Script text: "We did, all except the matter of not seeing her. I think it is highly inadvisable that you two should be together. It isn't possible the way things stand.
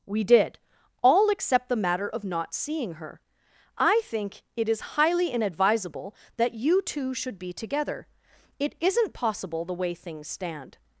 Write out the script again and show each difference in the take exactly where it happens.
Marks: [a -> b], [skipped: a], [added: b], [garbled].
"We did, all except the matter of not seeing her. I think it is highly inadvisable that you two should be together. It isn't possible the way things stand.